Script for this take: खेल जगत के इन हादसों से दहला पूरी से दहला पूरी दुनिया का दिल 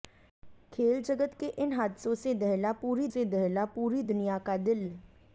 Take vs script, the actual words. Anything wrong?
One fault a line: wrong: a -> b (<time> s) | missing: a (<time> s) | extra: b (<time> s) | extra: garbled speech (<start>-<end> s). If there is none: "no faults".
no faults